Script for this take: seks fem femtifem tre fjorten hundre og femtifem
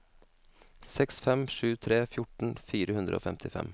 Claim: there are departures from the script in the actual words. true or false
true